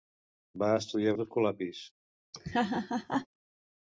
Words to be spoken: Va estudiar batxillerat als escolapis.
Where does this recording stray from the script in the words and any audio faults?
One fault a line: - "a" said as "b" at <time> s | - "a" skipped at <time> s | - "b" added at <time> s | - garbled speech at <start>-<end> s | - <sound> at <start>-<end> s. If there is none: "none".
- "batxillerat" skipped at 1.1 s
- laugh at 2.3-3.3 s